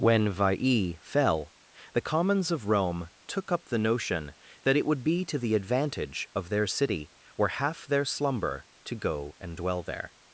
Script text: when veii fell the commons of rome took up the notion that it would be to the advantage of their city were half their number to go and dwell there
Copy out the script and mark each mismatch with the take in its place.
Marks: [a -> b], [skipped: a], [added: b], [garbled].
when veii fell the commons of rome took up the notion that it would be to the advantage of their city were half their [number -> slumber] to go and dwell there